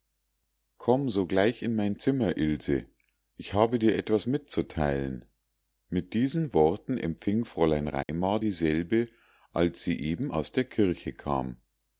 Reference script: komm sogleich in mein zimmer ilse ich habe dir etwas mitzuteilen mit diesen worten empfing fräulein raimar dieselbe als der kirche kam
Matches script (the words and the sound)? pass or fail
fail